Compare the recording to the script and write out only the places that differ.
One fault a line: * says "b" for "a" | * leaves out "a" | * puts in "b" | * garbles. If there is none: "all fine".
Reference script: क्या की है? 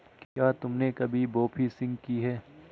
* puts in "तुमने कभी बोफिशिंग"